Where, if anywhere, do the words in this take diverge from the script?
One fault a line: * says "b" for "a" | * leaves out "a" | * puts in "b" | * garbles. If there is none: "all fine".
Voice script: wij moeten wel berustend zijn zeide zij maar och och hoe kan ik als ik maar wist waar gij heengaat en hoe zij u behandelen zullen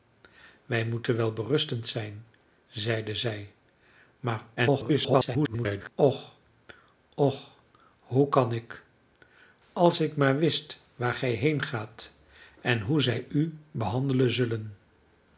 * garbles